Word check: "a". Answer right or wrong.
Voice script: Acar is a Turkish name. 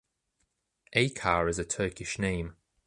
right